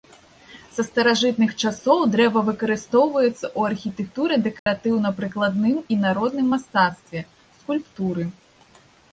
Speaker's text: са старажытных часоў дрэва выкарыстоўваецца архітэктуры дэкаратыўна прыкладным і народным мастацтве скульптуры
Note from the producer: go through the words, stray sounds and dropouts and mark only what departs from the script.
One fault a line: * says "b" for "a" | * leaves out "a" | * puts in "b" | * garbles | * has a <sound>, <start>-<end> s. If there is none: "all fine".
* puts in "ў"
* has a dropout, 4.6-4.7 s